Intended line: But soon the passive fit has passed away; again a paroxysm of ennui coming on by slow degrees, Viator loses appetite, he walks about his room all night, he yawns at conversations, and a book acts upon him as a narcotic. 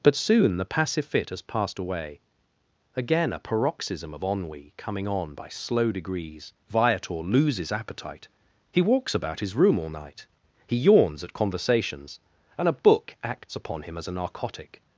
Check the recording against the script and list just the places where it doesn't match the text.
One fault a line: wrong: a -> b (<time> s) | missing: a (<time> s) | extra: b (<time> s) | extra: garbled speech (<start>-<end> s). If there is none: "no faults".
no faults